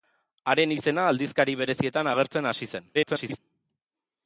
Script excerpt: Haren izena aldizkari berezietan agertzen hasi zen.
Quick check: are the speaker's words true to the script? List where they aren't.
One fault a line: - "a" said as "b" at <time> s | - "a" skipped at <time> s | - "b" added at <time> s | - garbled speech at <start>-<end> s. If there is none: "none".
- garbled speech at 2.9-3.4 s